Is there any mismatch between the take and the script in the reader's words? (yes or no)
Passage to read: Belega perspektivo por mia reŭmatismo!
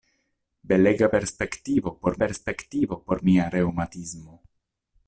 yes